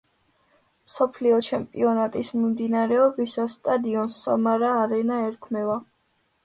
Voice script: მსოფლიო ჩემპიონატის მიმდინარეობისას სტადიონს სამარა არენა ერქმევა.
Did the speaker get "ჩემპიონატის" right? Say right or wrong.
right